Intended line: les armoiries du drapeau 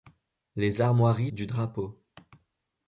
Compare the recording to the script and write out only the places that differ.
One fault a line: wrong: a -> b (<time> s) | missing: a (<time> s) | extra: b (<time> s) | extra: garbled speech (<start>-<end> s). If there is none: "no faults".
no faults